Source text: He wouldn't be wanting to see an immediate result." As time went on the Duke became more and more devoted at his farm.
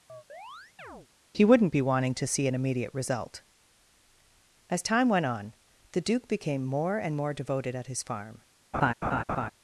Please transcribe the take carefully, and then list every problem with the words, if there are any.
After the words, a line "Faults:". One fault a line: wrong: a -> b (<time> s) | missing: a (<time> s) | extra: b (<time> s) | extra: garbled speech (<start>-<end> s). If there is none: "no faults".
He wouldn't be wanting to see an immediate result." As time went on the Duke became more and more devoted at his farm.
Faults:
no faults